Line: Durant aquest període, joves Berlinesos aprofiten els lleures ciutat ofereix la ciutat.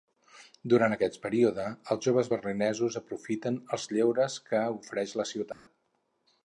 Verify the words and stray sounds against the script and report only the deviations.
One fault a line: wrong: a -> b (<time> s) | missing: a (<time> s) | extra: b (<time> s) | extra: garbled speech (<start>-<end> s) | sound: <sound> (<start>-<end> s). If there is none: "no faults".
extra: els (1.9 s)
wrong: ciutat -> que (4.5 s)
sound: dropout (5.5-5.7 s)